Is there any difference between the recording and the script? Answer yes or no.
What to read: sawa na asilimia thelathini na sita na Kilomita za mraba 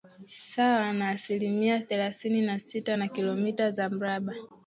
no